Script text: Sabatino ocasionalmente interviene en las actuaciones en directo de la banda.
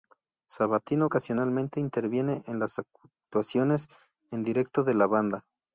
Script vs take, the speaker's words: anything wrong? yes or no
no